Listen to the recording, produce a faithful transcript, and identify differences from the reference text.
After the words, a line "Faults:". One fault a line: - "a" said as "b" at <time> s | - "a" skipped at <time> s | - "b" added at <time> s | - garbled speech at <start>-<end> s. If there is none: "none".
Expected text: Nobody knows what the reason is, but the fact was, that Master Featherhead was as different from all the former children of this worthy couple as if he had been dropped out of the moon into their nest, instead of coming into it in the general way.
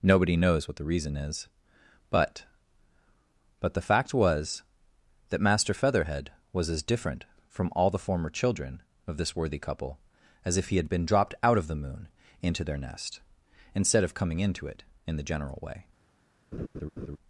Nobody knows what the reason is, but but the fact was, that Master Featherhead was as different from all the former children of this worthy couple as if he had been dropped out of the moon into their nest, instead of coming into it in the general way.
Faults:
- "but" added at 3.6 s